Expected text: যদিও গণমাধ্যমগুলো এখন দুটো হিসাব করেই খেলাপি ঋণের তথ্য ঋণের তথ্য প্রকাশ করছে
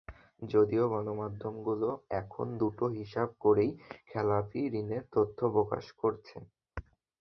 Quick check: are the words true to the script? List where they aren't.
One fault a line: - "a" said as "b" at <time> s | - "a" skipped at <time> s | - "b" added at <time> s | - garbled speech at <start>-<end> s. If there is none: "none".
- "ঋণের তথ্য" skipped at 5.4 s